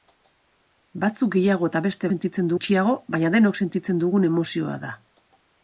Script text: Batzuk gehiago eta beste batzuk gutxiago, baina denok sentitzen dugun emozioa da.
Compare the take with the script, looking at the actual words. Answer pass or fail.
fail